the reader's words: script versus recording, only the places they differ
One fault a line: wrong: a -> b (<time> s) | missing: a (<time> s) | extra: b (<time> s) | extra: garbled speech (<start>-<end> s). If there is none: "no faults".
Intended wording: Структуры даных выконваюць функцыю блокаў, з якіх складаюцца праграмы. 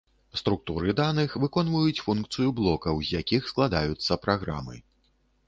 no faults